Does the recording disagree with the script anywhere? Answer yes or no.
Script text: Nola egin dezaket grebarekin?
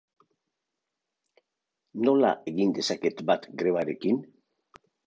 yes